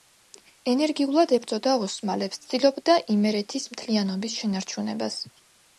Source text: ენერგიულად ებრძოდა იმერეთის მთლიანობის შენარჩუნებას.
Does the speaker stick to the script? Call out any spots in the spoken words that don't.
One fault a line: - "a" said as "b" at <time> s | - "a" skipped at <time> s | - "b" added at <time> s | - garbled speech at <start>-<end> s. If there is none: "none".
- "ოსმალებს ცდილობდა" added at 1.9 s